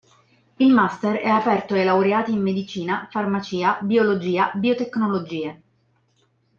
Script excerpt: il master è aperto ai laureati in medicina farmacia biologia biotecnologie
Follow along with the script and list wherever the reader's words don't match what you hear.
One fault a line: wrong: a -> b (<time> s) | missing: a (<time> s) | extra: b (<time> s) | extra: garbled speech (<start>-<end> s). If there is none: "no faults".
no faults